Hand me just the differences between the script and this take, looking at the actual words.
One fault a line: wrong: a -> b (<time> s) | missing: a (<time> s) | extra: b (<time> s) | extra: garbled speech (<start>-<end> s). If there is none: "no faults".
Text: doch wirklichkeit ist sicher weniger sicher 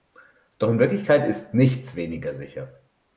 extra: in (0.7 s)
wrong: sicher -> nichts (1.5 s)